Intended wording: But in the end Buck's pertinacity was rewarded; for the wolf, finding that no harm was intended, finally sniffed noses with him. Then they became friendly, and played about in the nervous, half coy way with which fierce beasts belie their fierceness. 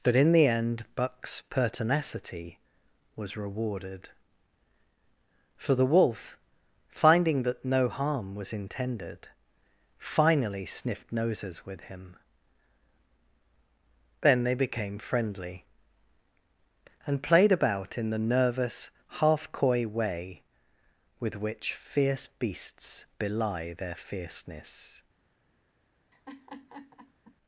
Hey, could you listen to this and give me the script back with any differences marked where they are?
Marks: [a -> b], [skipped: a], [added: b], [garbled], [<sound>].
But in the end Buck's pertinacity was rewarded; for the wolf, finding that no harm was intended, finally sniffed noses with him. Then they became friendly, and played about in the nervous, half coy way with which fierce beasts belie their fierceness. [laugh]